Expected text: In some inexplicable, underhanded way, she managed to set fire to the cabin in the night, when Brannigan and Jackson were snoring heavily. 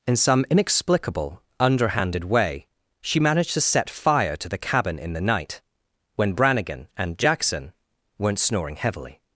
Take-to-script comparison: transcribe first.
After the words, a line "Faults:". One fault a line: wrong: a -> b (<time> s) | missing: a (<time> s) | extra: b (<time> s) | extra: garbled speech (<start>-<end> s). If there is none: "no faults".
In some inexplicable, underhanded way, she managed to set fire to the cabin in the night, when Brannigan and Jackson weren't snoring heavily.
Faults:
wrong: were -> weren't (8.2 s)